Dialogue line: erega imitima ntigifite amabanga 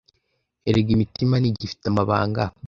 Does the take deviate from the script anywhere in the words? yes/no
no